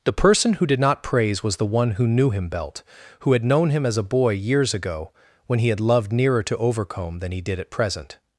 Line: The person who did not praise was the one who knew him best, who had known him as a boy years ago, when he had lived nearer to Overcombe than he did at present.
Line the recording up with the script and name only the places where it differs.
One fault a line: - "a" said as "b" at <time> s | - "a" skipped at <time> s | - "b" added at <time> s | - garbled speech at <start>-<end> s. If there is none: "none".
- "best" said as "belt" at 2.5 s
- "lived" said as "loved" at 5.8 s